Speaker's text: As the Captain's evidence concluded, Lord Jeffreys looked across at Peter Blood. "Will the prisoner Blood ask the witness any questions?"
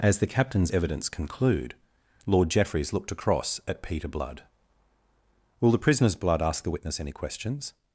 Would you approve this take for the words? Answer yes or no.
no